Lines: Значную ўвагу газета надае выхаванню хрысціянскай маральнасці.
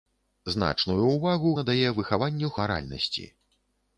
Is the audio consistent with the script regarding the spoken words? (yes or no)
no